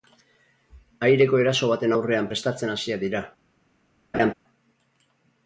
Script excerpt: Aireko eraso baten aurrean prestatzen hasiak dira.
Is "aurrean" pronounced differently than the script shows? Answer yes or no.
no